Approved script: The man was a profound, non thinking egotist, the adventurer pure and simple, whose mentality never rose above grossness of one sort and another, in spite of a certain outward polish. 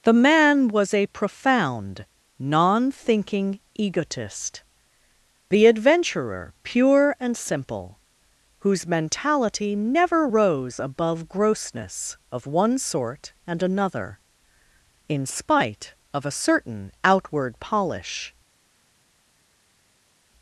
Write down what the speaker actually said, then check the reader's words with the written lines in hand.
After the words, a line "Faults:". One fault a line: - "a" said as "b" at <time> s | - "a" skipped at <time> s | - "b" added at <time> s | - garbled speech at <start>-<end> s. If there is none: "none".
The man was a profound, non thinking egotist, the adventurer pure and simple, whose mentality never rose above grossness of one sort and another, in spite of a certain outward polish.
Faults:
none